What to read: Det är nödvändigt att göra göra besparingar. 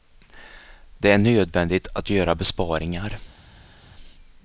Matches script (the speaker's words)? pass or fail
fail